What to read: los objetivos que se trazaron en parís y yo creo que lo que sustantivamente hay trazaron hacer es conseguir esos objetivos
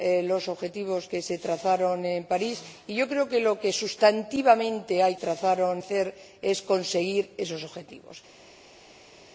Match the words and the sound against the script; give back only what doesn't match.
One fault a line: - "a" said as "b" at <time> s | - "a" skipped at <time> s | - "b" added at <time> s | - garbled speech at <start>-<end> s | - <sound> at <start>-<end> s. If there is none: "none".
none